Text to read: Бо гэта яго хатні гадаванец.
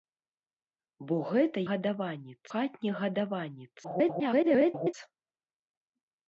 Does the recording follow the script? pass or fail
fail